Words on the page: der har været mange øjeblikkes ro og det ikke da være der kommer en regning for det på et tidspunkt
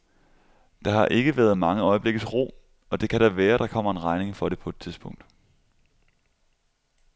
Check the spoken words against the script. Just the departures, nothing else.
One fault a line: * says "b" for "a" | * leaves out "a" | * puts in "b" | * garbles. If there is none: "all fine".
* puts in "ikke"
* says "kan" for "ikke"